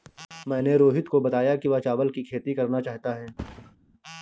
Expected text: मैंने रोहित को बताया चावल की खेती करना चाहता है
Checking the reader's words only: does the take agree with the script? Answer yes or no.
no